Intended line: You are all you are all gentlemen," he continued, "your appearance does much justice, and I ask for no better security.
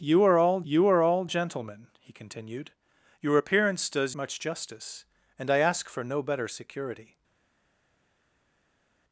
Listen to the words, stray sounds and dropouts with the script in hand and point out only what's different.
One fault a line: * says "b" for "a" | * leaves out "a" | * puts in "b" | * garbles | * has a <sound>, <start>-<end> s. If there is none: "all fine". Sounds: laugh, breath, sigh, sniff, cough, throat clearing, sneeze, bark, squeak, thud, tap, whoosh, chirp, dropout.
all fine